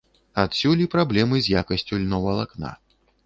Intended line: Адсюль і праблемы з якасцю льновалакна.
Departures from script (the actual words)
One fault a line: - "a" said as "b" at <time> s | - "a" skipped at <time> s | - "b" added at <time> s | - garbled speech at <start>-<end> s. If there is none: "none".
none